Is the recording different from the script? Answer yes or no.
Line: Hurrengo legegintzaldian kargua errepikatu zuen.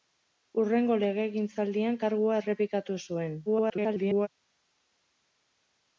yes